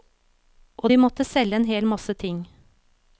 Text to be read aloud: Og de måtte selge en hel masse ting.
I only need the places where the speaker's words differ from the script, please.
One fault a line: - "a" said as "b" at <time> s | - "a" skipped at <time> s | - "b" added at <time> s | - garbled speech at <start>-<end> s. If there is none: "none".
none